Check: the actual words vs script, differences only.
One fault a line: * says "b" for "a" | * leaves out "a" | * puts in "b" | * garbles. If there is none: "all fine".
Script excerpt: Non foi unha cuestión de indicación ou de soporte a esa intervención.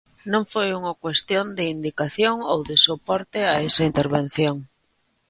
all fine